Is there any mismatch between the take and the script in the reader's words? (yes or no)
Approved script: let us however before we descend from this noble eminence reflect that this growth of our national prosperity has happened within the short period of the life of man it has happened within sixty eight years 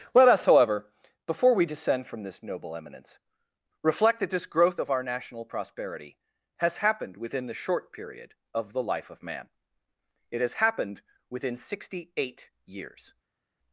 no